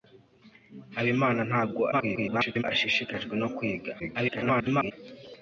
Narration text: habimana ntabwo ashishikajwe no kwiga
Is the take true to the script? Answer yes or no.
no